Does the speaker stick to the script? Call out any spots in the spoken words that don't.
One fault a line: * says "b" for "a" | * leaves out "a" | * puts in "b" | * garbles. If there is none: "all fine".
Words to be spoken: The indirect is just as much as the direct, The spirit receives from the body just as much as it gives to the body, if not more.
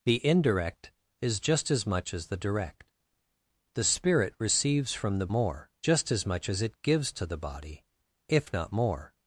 * says "more" for "body"